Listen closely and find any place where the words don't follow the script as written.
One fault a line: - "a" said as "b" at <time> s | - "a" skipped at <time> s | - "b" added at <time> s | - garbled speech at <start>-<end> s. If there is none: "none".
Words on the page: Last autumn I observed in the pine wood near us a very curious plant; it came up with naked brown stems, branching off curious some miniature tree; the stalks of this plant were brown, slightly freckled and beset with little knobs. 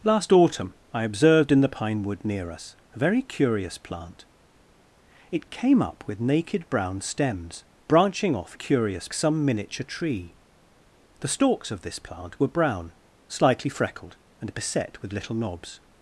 none